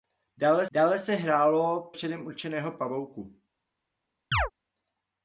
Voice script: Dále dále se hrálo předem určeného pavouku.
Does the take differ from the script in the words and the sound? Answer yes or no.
yes